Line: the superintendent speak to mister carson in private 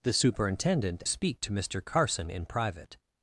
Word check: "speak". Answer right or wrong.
right